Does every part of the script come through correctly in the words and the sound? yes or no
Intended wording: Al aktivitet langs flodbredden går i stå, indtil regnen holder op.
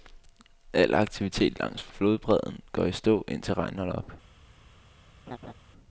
no